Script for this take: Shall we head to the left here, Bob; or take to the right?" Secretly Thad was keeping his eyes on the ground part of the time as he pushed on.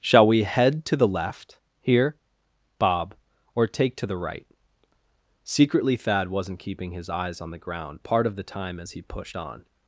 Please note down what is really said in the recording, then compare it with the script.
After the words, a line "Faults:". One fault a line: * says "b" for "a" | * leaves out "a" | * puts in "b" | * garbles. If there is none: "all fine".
Shall we head to the left here, Bob; or take to the right?" Secretly Thad wasn't keeping his eyes on the ground part of the time as he pushed on.
Faults:
* says "wasn't" for "was"